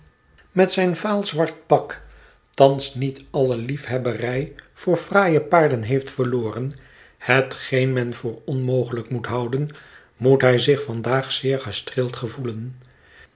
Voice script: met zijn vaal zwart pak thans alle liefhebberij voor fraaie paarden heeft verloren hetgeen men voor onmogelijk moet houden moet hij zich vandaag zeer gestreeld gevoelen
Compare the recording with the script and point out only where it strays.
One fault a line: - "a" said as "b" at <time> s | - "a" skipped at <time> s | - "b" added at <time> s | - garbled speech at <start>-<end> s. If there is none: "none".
- "niet" added at 3.0 s